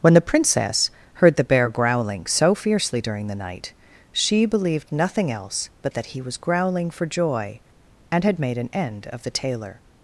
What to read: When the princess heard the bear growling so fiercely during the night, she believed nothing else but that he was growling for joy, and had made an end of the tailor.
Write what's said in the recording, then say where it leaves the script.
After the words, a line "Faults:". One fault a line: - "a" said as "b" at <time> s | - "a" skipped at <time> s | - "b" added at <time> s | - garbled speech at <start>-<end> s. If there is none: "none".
When the princess heard the bear growling so fiercely during the night, she believed nothing else but that he was growling for joy, and had made an end of the tailor.
Faults:
none